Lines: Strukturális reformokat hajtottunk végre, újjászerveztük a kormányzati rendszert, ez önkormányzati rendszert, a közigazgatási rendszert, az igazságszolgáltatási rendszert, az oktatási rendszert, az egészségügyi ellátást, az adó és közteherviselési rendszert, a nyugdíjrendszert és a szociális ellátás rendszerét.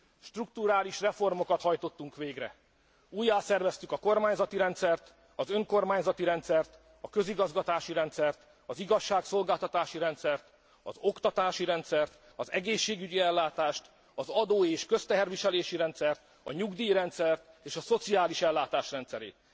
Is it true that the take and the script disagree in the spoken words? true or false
true